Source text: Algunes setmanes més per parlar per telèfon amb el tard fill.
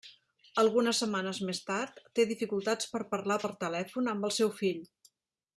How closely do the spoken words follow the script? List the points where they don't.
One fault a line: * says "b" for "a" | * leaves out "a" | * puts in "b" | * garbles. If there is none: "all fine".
* puts in "tard té dificultats"
* says "seu" for "tard"